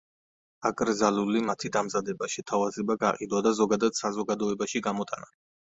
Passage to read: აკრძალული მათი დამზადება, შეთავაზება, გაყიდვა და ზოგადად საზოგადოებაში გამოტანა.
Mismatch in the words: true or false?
false